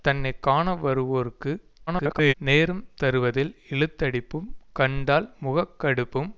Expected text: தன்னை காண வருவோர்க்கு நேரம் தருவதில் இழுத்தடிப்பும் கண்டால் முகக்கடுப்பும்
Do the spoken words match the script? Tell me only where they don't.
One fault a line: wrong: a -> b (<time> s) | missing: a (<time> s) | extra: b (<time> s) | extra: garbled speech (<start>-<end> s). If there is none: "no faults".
extra: garbled speech (1.9-2.3 s)